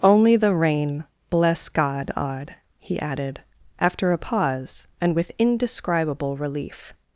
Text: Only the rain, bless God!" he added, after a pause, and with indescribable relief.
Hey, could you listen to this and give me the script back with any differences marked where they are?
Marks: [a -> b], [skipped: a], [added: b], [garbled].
Only the rain, bless God!" [added: odd] he added, after a pause, and with indescribable relief.